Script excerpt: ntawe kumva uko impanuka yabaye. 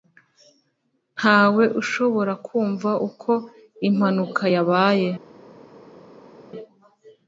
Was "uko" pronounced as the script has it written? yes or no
yes